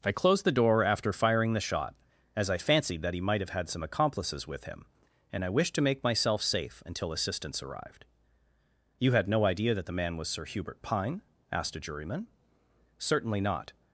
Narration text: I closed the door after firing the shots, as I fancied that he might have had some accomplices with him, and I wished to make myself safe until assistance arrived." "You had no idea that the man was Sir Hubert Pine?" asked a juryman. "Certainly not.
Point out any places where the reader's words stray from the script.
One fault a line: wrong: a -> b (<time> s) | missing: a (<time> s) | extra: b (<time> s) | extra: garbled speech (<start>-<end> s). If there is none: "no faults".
wrong: shots -> shot (1.6 s)